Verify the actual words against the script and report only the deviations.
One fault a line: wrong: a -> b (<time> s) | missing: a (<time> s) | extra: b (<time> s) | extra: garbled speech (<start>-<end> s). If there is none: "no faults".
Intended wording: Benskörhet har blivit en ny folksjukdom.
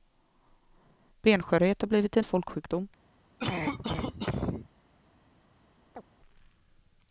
missing: ny (2.2 s)